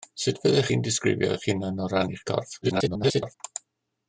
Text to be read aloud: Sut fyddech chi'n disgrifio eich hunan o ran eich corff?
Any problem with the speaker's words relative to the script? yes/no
yes